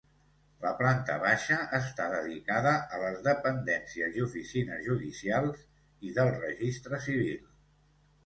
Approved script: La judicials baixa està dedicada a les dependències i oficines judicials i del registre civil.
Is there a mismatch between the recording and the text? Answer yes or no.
yes